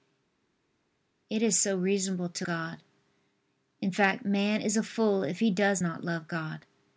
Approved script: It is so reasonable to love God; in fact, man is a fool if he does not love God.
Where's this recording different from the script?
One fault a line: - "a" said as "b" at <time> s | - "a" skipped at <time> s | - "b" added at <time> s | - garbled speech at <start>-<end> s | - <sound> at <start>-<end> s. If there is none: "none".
- "love" skipped at 2.5 s